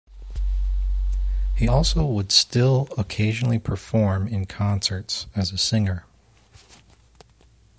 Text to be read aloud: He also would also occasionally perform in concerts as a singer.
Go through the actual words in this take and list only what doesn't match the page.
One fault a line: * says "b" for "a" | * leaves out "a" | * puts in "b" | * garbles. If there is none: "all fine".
* says "still" for "also"